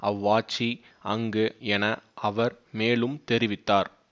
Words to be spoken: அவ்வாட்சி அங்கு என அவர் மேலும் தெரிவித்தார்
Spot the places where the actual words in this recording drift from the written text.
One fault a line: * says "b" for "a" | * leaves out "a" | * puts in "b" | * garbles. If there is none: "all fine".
all fine